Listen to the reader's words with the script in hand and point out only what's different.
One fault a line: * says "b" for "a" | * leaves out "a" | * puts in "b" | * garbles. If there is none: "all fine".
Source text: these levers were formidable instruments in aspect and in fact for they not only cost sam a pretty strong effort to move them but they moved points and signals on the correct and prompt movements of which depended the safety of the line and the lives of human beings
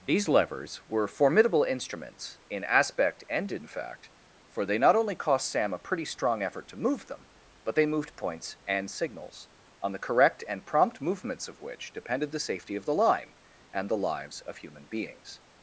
all fine